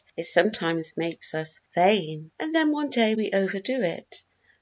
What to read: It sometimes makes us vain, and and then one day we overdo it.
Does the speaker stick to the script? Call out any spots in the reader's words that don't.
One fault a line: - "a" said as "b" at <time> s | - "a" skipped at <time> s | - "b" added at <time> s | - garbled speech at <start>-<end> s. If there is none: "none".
- "and" skipped at 2.5 s